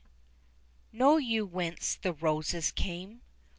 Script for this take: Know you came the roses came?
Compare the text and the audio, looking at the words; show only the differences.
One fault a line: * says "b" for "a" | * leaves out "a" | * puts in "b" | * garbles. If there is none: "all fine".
* says "whence" for "came"